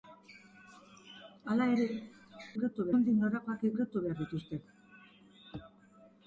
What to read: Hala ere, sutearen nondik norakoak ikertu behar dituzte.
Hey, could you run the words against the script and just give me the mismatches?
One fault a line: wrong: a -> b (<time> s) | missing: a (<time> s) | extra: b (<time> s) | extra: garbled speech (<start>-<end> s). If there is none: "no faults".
wrong: sutearen -> ikertu (2.5 s)